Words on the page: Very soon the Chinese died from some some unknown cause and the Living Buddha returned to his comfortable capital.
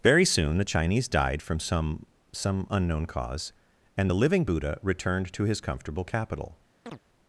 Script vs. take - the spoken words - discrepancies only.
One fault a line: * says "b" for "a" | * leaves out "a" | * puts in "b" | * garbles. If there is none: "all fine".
all fine